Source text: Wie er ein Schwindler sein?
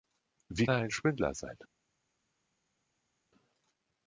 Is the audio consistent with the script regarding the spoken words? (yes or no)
yes